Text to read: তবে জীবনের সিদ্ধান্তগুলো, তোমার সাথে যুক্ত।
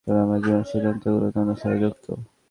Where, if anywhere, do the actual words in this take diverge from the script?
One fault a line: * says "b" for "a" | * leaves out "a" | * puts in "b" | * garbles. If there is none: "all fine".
* puts in "আমার"